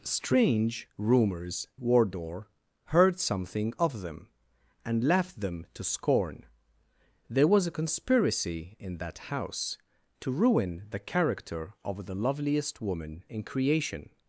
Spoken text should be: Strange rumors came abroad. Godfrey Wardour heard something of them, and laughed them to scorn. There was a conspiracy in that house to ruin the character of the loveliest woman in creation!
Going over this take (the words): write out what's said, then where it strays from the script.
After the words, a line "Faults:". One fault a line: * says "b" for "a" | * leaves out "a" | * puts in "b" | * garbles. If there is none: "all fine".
Strange rumors Wardour heard something of them, and laughed them to scorn. There was a conspiracy in that house to ruin the character of the loveliest woman in creation!
Faults:
* leaves out "came abroad Godfrey"